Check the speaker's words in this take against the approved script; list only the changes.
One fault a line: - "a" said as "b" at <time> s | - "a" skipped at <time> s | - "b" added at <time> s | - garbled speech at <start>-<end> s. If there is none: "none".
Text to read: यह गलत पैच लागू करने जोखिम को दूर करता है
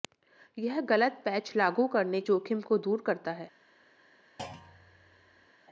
none